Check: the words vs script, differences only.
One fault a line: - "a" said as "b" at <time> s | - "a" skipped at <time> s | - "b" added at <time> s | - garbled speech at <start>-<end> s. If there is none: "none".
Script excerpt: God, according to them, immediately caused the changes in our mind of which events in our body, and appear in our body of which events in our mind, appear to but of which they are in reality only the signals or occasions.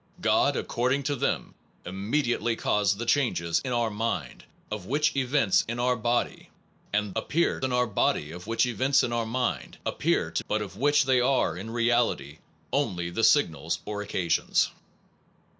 none